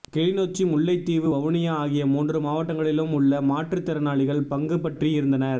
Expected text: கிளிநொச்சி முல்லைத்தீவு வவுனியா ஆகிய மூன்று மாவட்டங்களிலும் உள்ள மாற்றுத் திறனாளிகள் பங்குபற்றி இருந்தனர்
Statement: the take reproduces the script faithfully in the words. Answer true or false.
true